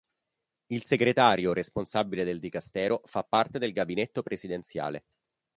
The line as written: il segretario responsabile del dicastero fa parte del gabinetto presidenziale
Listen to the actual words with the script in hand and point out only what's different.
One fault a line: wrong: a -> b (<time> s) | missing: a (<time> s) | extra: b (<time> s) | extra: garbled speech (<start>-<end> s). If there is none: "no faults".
no faults